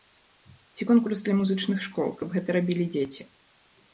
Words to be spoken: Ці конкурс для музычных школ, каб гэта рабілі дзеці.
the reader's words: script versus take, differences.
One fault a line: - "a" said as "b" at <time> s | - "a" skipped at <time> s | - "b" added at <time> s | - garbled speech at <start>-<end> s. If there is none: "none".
none